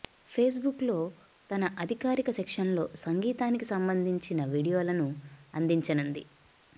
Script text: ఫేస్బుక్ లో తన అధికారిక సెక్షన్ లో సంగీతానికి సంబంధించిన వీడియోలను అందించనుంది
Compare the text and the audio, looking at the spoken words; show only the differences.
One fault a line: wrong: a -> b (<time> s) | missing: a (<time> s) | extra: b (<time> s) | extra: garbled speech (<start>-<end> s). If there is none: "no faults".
no faults